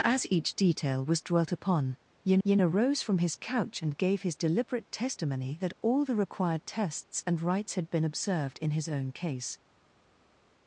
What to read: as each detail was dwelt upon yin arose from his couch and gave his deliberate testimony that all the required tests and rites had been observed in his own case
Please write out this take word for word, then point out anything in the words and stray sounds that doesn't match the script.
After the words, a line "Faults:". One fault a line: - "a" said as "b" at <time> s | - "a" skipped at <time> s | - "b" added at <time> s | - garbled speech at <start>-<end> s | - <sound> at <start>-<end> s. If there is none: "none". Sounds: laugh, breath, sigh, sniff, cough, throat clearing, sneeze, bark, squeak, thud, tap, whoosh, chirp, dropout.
as each detail was dwelt upon yin yin arose from his couch and gave his deliberate testimony that all the required tests and rites had been observed in his own case
Faults:
- "yin" added at 2.4 s